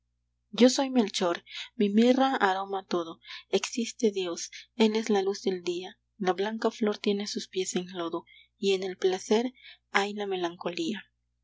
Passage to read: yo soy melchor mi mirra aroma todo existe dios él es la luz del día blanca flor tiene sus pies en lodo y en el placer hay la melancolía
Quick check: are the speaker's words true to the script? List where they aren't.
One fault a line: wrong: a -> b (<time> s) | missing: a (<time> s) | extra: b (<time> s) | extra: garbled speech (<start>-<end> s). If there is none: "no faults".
extra: la (6.2 s)